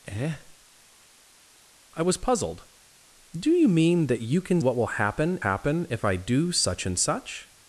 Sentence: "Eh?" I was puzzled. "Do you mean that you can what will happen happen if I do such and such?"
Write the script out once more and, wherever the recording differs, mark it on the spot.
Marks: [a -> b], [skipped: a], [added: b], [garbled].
"Eh?" I was puzzled. "Do you mean that you can what will happen happen if I do such and such?"